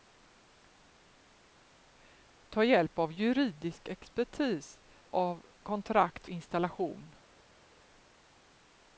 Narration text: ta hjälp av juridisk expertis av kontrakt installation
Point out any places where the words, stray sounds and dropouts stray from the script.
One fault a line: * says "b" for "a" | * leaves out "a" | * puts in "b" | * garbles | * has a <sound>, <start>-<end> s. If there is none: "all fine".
all fine